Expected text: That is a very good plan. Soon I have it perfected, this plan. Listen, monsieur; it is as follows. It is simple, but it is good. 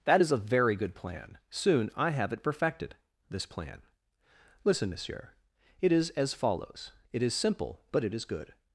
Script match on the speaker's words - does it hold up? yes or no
yes